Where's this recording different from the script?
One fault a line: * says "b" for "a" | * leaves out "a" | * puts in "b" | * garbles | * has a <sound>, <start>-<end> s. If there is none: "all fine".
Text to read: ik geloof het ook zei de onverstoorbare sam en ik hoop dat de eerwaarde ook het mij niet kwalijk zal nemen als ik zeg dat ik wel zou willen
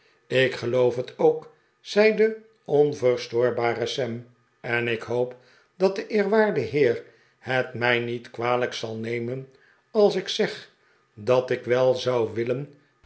* says "heer" for "ook"